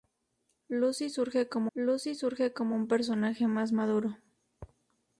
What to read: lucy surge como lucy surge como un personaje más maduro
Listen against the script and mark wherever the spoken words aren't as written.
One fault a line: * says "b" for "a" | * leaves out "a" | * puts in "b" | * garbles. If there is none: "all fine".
all fine